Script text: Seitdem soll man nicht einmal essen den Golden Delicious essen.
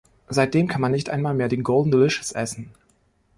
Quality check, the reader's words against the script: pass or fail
fail